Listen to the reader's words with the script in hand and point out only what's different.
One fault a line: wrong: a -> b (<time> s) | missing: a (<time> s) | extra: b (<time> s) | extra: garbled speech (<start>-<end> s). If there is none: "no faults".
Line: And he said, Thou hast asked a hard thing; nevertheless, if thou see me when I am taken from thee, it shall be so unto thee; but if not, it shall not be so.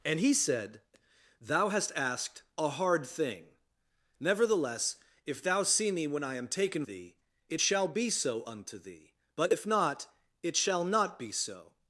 missing: from (6.8 s)